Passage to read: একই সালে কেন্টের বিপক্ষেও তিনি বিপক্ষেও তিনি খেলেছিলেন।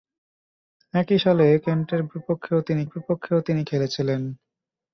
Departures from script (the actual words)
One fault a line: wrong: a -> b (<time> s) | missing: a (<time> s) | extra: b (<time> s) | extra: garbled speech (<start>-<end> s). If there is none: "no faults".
no faults